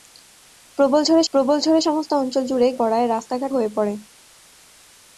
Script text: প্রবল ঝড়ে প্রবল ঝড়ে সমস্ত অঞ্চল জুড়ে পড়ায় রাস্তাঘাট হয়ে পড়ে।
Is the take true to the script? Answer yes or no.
yes